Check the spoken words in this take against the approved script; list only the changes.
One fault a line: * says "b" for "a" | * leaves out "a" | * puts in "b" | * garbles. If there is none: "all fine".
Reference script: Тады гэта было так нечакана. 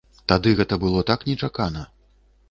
all fine